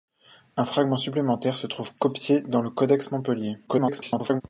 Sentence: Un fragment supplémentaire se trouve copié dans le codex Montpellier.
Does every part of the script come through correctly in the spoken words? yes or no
no